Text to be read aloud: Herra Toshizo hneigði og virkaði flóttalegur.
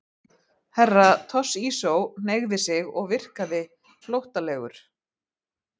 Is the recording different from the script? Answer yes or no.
yes